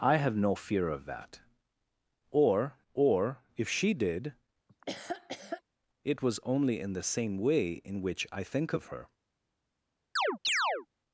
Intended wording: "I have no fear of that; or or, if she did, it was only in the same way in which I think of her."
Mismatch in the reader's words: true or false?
false